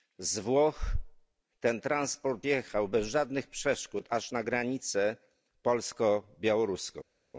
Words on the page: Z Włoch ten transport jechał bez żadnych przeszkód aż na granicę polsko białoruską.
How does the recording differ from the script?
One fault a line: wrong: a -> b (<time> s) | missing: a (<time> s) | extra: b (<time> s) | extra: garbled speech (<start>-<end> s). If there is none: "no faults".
no faults